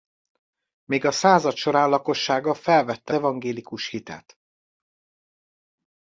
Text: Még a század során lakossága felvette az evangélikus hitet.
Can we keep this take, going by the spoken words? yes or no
no